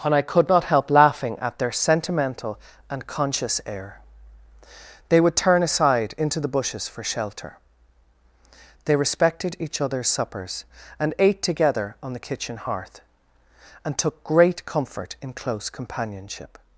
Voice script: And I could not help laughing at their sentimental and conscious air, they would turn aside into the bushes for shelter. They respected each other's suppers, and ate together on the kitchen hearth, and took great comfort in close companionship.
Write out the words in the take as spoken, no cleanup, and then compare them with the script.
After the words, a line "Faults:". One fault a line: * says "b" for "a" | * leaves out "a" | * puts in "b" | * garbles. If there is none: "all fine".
And I could not help laughing at their sentimental and conscious air, they would turn aside into the bushes for shelter. They respected each other's suppers, and ate together on the kitchen hearth, and took great comfort in close companionship.
Faults:
all fine